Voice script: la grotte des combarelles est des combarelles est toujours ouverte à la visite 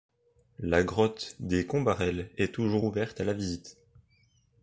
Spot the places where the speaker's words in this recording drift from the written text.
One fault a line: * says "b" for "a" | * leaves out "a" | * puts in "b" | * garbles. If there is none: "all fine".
* leaves out "des combarelles est"